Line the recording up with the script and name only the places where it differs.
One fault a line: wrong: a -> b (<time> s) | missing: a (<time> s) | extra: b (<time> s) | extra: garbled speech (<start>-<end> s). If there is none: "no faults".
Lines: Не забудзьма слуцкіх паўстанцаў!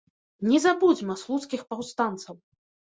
no faults